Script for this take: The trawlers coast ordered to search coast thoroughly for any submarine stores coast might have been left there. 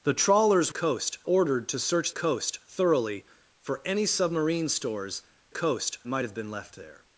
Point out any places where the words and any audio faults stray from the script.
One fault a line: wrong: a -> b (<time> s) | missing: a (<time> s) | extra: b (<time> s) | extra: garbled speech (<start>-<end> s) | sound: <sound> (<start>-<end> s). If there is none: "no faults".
no faults